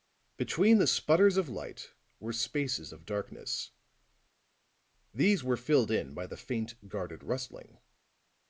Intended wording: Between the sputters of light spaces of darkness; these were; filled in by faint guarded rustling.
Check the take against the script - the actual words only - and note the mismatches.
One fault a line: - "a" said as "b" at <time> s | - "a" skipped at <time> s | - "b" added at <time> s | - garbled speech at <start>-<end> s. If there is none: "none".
- "were" added at 2.2 s
- "the" added at 6.3 s